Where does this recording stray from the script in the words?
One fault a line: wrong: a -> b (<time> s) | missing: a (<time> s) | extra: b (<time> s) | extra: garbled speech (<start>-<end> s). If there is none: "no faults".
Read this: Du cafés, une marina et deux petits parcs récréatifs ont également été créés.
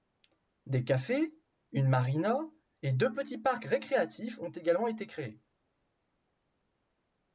wrong: Du -> Des (0.7 s)